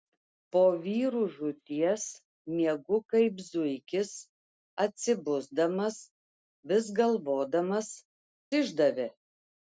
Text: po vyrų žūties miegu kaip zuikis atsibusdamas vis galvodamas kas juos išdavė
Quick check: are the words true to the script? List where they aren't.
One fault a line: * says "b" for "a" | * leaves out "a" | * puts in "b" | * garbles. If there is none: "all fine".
* leaves out "kas juos"